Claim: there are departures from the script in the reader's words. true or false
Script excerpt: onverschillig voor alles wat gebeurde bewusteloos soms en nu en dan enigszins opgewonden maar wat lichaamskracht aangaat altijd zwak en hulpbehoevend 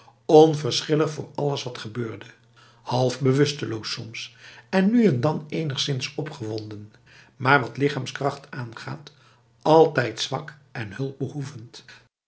true